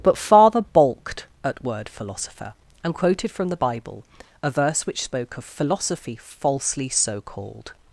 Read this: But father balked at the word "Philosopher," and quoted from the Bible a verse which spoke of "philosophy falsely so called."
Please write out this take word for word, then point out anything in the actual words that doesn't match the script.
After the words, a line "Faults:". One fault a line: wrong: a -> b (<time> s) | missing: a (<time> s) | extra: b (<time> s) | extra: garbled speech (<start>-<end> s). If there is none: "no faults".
But father balked at word "Philosopher," and quoted from the Bible a verse which spoke of "philosophy falsely so called."
Faults:
missing: the (1.6 s)